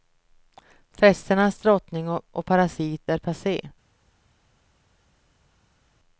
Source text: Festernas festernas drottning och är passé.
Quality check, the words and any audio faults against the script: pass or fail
fail